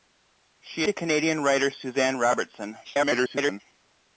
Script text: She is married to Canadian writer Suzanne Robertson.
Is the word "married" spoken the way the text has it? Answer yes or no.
no